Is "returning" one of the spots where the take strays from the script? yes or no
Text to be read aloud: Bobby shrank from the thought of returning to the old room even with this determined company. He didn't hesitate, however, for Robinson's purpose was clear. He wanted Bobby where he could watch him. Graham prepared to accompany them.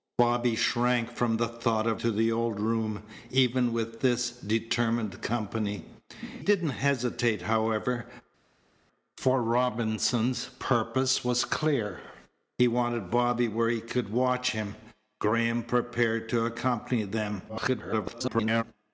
yes